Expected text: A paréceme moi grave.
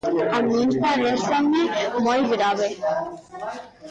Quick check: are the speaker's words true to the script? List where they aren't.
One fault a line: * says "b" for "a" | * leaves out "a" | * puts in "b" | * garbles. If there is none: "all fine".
* puts in "min"